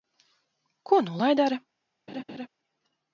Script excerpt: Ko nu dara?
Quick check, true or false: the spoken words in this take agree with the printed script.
false